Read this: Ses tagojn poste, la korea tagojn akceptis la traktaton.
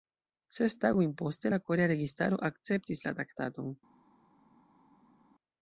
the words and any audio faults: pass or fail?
fail